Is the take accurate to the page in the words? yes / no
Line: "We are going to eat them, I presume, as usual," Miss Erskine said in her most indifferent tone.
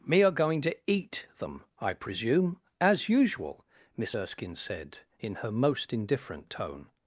no